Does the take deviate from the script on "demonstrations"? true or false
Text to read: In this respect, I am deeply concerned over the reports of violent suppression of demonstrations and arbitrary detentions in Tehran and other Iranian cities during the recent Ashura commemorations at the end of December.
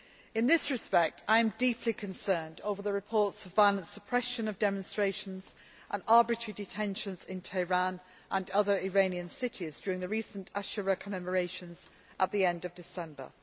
false